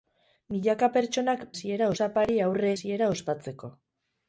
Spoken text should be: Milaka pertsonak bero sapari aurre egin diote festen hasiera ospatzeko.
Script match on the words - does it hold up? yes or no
no